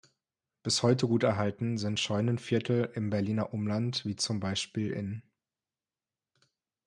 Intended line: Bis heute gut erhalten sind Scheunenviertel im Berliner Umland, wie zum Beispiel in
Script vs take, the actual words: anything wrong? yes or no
no